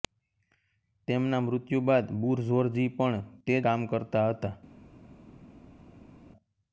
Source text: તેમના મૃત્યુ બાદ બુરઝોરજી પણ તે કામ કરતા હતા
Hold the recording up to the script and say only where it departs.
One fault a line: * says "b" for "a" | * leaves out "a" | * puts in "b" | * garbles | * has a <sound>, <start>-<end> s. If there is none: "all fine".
all fine